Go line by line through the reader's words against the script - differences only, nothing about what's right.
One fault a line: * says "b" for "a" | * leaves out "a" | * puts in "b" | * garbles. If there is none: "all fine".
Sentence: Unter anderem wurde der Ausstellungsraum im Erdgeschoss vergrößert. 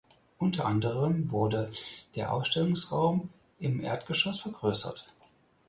all fine